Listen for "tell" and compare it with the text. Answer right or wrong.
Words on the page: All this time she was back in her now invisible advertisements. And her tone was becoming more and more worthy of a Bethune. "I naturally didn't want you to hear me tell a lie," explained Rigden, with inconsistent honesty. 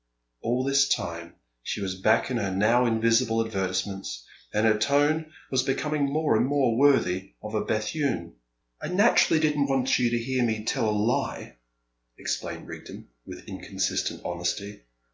right